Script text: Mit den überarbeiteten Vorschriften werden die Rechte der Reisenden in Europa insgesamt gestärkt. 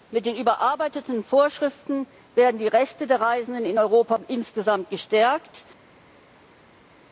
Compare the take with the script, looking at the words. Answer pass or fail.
pass